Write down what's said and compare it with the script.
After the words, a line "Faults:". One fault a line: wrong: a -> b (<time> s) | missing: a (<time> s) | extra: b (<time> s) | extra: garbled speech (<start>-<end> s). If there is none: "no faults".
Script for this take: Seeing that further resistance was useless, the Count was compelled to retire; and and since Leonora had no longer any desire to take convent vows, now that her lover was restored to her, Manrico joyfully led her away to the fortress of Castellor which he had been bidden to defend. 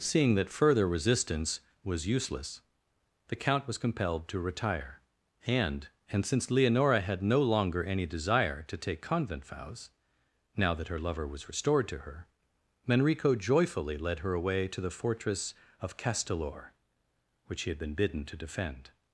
Seeing that further resistance was useless, the Count was compelled to retire; and and since Leonora had no longer any desire to take convent vows, now that her lover was restored to her, Manrico joyfully led her away to the fortress of Castellor which he had been bidden to defend.
Faults:
no faults